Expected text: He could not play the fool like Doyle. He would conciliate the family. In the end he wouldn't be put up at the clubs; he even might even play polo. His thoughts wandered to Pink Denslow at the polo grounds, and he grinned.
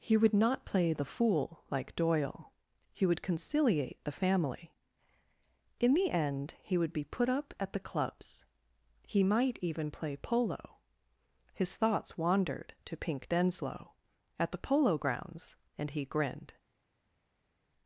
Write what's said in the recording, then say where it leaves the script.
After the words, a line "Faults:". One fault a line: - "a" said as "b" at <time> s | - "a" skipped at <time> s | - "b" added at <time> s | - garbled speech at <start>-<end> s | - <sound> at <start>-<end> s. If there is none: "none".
He would not play the fool like Doyle. He would conciliate the family. In the end he would be put up at the clubs; he might even play polo. His thoughts wandered to Pink Denslow at the polo grounds, and he grinned.
Faults:
- "could" said as "would" at 0.2 s
- "wouldn't" said as "would" at 6.8 s
- "even" skipped at 9.2 s